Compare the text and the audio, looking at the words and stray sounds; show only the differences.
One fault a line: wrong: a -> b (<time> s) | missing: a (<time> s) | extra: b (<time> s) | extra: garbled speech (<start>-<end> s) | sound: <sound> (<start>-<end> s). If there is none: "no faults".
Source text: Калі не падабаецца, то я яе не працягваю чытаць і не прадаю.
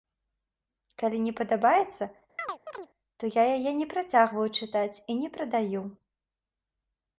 sound: chirp (2.4-2.9 s)